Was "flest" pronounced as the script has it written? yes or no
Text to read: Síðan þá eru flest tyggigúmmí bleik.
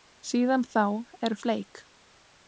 no